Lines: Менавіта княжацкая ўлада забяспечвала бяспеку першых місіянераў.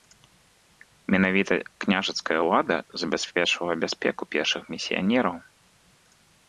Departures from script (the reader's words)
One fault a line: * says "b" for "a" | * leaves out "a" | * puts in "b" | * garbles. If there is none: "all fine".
all fine